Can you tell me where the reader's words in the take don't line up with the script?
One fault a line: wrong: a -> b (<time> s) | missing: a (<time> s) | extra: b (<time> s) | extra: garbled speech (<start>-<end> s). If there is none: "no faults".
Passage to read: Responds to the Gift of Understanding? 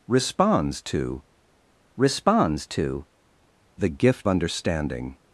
extra: responds to (2.0 s)
missing: of (4.3 s)